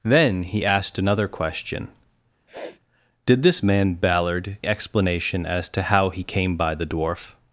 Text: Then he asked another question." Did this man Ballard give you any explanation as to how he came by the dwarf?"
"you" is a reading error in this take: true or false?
true